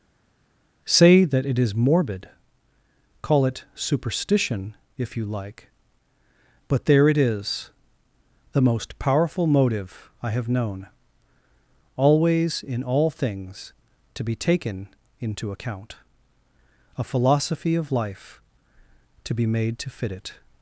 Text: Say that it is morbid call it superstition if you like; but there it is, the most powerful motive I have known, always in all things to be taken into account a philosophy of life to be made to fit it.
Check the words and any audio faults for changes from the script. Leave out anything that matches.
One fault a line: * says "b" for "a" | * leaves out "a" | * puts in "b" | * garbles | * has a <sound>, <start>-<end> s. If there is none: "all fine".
all fine